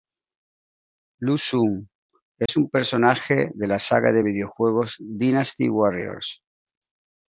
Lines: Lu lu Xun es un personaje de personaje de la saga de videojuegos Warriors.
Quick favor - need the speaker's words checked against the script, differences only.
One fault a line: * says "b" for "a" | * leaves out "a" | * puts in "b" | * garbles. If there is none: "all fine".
* leaves out "lu"
* leaves out "personaje de"
* puts in "Dynasty"